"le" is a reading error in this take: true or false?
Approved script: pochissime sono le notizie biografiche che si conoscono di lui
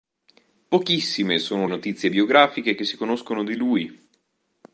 true